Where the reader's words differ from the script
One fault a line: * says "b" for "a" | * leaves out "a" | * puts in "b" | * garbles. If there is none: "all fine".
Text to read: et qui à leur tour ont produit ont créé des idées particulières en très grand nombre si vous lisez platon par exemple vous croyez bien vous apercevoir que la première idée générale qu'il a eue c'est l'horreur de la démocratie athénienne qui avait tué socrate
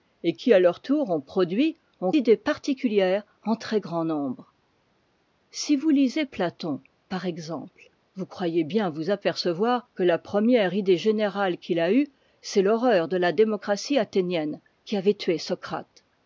* leaves out "créé des"